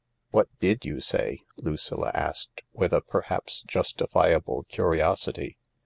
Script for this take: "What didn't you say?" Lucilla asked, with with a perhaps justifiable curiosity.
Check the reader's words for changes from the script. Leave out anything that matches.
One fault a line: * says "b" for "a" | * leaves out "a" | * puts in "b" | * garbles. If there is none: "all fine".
* says "did" for "didn't"
* leaves out "with"